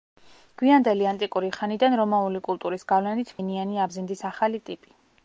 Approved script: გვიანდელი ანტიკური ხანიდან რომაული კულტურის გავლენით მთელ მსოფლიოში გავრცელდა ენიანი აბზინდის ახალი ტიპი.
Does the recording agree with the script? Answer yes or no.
no